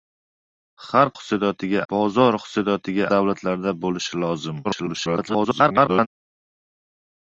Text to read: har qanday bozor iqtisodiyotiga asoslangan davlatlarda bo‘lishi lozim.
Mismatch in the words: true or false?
true